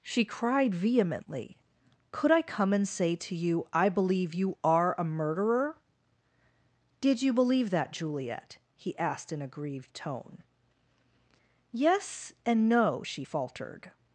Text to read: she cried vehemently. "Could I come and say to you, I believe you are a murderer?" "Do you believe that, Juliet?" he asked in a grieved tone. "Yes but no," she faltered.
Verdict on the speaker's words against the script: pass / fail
fail